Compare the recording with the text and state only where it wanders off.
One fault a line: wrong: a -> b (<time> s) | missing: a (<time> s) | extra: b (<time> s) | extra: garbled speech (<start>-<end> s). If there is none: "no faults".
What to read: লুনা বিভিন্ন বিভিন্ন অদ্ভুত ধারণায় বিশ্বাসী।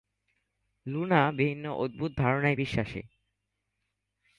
missing: বিভিন্ন (1.6 s)